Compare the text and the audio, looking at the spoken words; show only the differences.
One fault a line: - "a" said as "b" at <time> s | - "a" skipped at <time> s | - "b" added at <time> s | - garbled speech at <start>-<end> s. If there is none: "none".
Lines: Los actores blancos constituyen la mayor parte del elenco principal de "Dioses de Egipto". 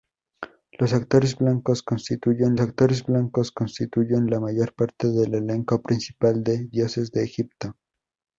- "actores blancos constituyen" added at 2.6 s